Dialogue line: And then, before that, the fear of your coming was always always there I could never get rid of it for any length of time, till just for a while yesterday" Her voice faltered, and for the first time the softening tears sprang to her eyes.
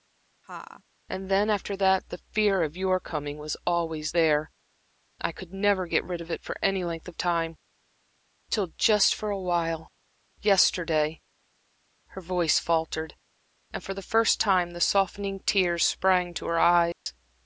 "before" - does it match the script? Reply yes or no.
no